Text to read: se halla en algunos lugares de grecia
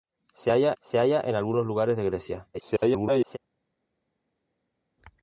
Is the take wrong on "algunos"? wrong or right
right